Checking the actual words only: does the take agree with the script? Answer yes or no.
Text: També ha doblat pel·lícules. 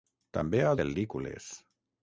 no